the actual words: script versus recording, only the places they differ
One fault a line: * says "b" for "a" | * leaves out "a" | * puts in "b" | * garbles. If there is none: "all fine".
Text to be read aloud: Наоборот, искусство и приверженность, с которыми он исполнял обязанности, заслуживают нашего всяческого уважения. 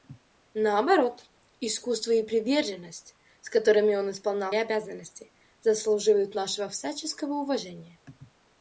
all fine